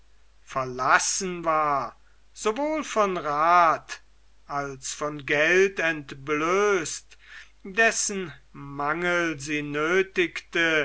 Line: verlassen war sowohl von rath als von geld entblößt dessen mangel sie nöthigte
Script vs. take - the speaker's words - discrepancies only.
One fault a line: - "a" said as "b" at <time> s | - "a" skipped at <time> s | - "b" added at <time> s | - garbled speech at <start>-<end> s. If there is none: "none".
none